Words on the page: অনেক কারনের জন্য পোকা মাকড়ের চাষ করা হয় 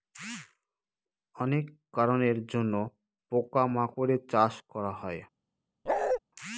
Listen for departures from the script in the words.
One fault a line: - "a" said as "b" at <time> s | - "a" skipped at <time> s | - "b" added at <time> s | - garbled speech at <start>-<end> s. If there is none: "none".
none